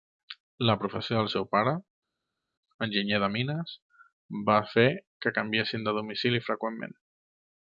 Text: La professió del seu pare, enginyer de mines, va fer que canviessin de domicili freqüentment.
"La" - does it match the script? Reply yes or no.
yes